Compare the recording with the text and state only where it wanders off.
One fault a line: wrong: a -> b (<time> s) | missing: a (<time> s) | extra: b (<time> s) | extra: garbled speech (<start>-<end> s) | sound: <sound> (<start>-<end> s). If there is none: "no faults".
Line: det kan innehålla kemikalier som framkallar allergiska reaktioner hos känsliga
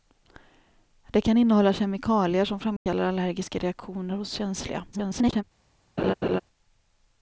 sound: dropout (2.8-2.9 s)
extra: garbled speech (4.9-5.4 s)
sound: laugh (6.0-6.4 s)